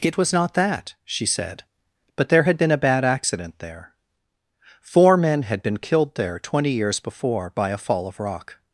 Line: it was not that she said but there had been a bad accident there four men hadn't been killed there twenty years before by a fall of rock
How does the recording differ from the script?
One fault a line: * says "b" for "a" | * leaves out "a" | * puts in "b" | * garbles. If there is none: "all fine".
* says "had" for "hadn't"